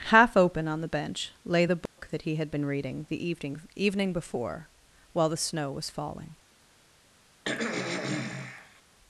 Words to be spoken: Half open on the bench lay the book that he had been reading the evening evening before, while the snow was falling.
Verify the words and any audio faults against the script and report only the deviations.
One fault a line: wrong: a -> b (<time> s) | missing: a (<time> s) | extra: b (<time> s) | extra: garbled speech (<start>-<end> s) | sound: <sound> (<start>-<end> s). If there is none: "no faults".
sound: dropout (1.9-2.0 s)
sound: throat clearing (7.4-8.8 s)